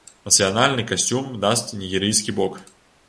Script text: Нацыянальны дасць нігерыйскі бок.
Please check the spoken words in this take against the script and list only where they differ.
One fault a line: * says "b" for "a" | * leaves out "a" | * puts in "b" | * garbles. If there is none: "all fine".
* puts in "касцюм"